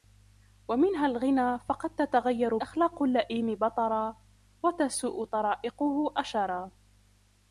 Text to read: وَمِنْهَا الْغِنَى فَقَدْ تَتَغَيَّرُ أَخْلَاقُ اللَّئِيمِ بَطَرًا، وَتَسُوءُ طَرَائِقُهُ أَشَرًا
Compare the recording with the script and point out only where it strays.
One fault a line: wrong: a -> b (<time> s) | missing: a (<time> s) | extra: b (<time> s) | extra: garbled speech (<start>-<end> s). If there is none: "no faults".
no faults